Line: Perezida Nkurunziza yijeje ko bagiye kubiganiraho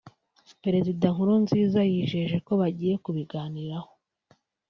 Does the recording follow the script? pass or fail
pass